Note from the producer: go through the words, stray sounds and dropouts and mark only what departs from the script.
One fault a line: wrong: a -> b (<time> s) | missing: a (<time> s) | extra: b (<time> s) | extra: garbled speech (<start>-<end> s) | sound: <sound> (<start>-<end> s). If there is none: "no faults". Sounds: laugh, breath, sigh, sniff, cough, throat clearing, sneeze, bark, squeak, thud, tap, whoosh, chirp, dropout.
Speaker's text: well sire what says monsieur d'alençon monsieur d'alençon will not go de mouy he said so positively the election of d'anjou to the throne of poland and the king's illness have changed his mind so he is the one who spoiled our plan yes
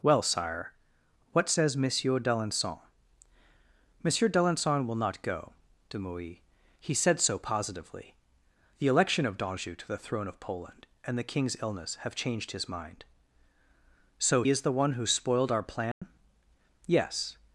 missing: he (14.4 s)
sound: dropout (15.9-16.0 s)